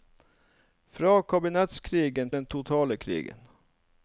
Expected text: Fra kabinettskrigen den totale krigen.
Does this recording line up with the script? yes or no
yes